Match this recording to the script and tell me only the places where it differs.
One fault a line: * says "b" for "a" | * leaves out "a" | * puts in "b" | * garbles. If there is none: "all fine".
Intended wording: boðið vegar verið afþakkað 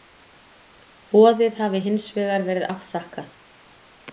* puts in "hafi hins"